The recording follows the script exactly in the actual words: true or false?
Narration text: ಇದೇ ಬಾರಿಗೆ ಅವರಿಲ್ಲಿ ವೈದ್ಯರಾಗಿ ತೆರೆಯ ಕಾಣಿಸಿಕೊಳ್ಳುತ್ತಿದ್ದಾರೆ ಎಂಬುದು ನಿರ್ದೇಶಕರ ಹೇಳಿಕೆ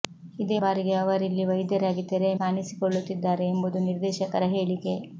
true